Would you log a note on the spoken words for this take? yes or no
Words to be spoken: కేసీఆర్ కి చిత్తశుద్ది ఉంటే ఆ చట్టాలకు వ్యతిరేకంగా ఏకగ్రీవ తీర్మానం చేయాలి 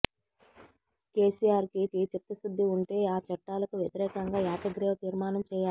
yes